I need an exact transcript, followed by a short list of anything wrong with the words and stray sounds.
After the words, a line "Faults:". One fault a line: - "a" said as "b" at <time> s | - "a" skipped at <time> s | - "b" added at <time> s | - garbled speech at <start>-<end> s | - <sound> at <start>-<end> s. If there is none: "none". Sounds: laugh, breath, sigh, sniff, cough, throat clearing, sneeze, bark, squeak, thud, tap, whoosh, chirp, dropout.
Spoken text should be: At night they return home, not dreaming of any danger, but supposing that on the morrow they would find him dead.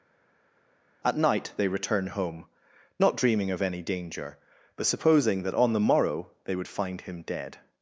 At night they return home, not dreaming of any danger, but supposing that on the morrow they would find him dead.
Faults:
none